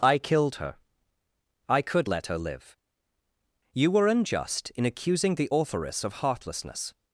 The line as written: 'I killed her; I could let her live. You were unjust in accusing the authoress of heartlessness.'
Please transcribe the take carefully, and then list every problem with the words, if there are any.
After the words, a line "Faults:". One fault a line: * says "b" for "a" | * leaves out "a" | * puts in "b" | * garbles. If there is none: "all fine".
'I killed her; I could let her live. You were unjust in accusing the authoress of heartlessness.'
Faults:
all fine